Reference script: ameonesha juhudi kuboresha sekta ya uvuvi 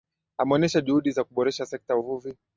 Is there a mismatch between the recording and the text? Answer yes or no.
yes